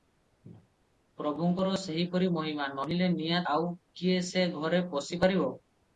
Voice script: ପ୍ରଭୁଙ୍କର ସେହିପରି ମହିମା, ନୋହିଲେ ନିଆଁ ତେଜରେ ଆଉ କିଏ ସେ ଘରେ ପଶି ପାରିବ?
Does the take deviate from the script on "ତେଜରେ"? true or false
true